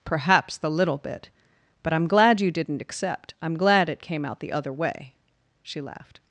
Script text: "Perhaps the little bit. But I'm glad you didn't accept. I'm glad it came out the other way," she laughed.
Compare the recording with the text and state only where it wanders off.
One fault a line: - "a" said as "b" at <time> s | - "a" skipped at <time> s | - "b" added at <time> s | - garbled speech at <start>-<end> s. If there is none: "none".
none